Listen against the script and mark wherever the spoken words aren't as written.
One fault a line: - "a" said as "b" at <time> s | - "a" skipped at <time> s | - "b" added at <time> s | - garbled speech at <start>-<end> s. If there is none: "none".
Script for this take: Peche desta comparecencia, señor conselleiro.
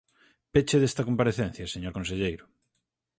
none